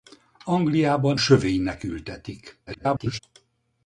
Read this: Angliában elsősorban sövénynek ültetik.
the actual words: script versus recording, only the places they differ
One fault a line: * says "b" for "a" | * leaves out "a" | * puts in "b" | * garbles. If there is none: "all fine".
* leaves out "elsősorban"
* garbles